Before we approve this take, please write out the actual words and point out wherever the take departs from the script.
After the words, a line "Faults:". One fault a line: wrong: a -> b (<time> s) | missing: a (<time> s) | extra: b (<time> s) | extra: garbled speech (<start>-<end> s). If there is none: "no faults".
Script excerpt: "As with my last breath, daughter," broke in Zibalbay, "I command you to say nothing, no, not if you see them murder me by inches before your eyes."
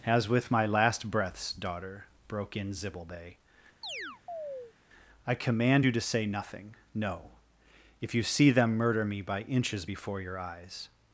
"As with my last breaths, daughter," broke in Zibalbay, "I command you to say nothing, no, if you see them murder me by inches before your eyes."
Faults:
wrong: breath -> breaths (1.1 s)
missing: not (7.3 s)